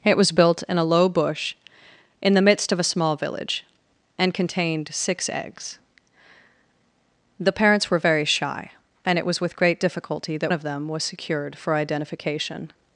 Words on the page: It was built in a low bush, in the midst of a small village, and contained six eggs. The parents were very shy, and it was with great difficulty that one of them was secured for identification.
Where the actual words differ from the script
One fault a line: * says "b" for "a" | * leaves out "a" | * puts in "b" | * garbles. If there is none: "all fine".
* leaves out "one"